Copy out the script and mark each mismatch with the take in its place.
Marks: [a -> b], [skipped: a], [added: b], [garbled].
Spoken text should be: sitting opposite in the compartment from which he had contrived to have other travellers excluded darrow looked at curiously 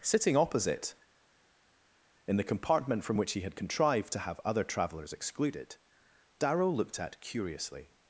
sitting opposite in the compartment from which he had contrived to have other travellers excluded darrow looked at curiously